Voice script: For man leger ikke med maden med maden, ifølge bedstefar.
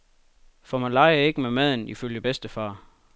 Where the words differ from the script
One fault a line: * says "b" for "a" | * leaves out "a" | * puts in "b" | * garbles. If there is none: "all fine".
* leaves out "med maden"